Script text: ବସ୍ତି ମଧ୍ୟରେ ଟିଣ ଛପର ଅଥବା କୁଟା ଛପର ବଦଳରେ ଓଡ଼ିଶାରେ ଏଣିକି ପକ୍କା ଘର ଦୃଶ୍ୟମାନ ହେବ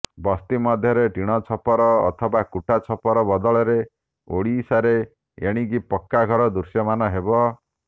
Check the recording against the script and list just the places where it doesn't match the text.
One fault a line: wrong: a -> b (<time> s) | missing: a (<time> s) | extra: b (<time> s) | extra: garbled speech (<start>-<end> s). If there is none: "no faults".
no faults